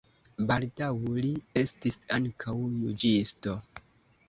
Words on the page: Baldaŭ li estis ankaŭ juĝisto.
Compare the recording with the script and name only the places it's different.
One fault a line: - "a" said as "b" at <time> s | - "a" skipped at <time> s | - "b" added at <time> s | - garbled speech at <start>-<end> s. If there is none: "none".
none